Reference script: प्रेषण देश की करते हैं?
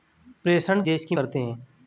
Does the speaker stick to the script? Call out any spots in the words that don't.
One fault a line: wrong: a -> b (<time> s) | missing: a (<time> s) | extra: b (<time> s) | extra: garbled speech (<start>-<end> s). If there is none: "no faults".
no faults